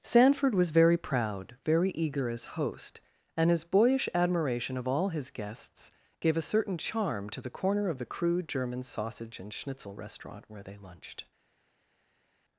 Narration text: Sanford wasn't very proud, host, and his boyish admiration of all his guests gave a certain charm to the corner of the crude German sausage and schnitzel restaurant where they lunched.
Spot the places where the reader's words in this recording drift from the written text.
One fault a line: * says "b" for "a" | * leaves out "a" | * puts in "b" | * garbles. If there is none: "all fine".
* says "was" for "wasn't"
* puts in "very eager as"